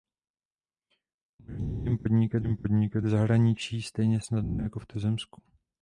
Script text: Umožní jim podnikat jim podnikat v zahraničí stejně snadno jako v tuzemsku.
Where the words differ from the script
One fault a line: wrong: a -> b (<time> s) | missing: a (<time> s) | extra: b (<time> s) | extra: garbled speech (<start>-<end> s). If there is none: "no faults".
no faults